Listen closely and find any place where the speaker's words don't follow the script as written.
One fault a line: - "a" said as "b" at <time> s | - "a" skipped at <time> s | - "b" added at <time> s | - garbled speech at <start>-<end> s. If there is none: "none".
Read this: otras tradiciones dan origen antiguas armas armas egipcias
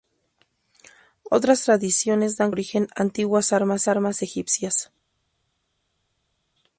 none